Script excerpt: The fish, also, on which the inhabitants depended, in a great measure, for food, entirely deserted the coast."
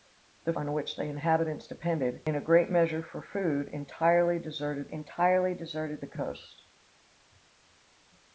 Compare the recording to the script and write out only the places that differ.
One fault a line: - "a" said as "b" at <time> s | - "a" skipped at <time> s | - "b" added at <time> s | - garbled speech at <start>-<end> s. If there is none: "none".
- "fish also" skipped at 0.5 s
- "entirely deserted" added at 4.9 s